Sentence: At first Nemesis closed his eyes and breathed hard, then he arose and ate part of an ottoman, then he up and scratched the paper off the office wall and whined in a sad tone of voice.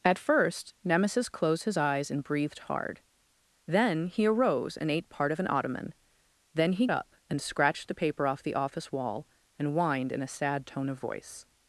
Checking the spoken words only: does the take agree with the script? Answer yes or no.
yes